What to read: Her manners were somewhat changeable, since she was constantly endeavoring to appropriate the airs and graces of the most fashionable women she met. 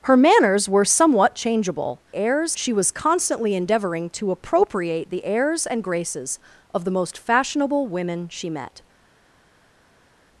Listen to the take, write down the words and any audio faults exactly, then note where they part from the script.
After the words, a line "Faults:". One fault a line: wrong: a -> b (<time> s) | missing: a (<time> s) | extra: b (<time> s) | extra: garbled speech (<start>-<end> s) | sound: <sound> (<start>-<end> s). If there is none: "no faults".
Her manners were somewhat changeable, airs she was constantly endeavoring to appropriate the airs and graces of the most fashionable women she met.
Faults:
wrong: since -> airs (2.1 s)